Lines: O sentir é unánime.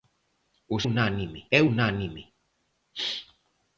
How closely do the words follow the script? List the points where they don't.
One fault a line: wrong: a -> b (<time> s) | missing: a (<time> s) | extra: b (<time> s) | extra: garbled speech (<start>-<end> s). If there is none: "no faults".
wrong: sentir -> unánime (0.9 s)